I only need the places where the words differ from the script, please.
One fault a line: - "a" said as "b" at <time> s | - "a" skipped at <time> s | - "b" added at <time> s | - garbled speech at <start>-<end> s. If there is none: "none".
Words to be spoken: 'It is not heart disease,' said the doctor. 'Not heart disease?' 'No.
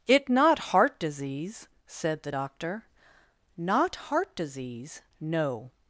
- "is" skipped at 0.3 s